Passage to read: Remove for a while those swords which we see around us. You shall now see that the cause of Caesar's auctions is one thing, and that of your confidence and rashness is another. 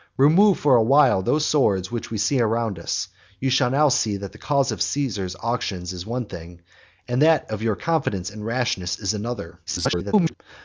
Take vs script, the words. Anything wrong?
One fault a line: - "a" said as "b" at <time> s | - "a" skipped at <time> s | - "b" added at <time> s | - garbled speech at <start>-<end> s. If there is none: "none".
- garbled speech at 9.7-10.3 s